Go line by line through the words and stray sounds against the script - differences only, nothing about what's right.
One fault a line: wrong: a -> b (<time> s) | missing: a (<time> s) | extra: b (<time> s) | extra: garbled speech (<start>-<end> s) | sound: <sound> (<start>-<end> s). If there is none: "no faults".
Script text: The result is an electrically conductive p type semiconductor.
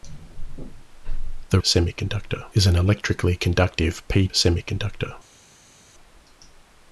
wrong: result -> semiconductor (1.6 s)
missing: type (4.3 s)